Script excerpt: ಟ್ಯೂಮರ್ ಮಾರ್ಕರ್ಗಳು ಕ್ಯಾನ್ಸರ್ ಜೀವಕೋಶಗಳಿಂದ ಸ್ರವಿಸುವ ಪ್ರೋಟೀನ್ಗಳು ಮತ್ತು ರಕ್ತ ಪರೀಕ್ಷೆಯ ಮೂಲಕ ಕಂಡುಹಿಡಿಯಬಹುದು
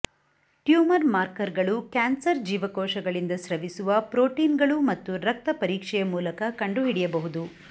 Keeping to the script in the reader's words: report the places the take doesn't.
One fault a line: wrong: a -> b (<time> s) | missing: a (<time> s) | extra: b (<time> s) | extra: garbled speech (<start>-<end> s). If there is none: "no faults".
no faults